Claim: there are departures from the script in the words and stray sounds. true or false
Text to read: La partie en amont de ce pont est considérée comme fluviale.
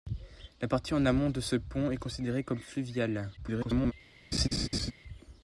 true